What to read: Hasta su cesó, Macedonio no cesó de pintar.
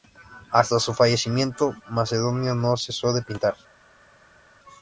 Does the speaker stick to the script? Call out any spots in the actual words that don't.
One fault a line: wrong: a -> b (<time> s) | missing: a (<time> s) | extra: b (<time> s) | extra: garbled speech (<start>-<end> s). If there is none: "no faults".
wrong: cesó -> fallecimiento (0.9 s)